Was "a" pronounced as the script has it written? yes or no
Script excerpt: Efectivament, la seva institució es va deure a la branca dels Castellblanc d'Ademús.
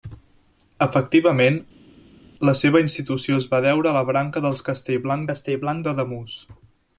yes